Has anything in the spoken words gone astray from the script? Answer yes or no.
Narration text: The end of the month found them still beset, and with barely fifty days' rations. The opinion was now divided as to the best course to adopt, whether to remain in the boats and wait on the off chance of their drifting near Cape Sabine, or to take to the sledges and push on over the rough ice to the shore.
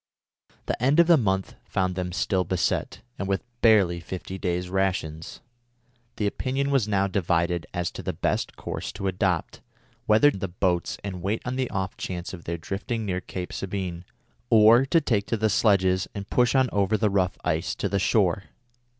yes